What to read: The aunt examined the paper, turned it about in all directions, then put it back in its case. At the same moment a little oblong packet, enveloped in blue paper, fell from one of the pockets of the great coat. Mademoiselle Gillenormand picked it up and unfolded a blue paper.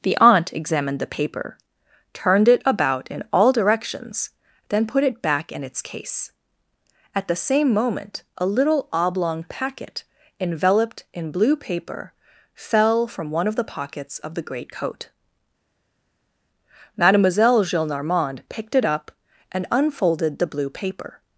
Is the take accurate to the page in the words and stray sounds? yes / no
no